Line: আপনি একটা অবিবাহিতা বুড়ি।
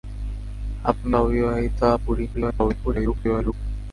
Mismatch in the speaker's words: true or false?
true